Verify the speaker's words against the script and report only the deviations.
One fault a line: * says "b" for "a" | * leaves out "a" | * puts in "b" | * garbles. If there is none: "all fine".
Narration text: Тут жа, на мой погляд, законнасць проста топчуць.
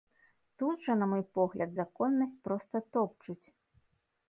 all fine